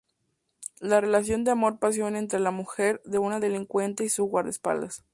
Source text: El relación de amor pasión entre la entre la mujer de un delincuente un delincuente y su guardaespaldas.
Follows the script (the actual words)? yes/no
no